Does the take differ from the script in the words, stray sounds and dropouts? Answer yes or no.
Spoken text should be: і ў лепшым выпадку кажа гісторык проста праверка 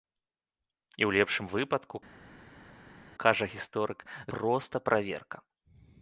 no